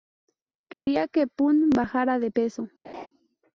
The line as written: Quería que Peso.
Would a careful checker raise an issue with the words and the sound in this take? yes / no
yes